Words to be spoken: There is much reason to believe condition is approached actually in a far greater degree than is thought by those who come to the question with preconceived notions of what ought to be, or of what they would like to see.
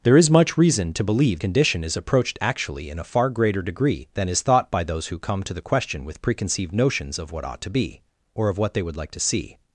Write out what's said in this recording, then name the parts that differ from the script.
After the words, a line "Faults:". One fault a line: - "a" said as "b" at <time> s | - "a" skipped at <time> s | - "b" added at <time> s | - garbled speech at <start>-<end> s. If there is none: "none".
There is much reason to believe condition is approached actually in a far greater degree than is thought by those who come to the question with preconceived notions of what ought to be, or of what they would like to see.
Faults:
none